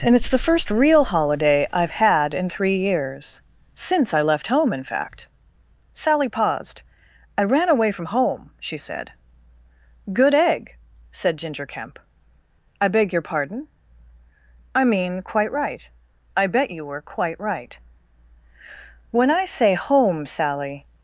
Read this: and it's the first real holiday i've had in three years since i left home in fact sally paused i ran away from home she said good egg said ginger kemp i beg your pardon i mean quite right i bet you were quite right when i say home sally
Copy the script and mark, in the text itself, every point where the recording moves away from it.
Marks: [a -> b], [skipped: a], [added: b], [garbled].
and it's the first real holiday i've had in three years since i left home in fact sally paused i ran away from home she said good egg said ginger kemp i beg your pardon i mean quite right i bet you were quite right when i say home sally